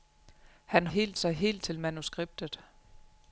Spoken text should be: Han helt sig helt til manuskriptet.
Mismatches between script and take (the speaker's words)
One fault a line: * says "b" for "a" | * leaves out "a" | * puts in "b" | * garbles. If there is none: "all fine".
all fine